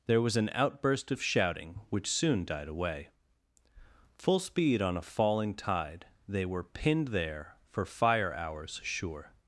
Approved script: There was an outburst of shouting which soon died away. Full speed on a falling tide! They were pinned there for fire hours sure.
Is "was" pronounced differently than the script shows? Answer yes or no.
no